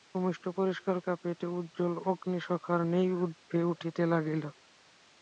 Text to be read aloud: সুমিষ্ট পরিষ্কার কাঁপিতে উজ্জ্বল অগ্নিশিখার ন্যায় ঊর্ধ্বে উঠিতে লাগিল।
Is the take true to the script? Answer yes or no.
yes